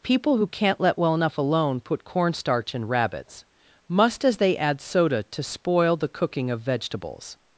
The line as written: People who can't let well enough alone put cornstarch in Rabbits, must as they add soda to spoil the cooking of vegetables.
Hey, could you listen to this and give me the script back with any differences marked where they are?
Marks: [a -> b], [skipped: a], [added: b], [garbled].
People who can't let well enough alone put cornstarch in Rabbits, must as they add soda to spoil the cooking of vegetables.